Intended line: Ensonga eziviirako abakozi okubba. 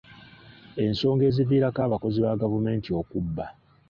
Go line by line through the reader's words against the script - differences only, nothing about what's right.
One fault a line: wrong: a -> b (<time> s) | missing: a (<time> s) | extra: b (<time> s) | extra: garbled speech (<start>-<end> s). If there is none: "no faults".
extra: ba gavumenti (2.2 s)